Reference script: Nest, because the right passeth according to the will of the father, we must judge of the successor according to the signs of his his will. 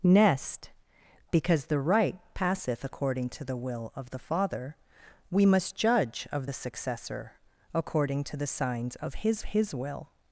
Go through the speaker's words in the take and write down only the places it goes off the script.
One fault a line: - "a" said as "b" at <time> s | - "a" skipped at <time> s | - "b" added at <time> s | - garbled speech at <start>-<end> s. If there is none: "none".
none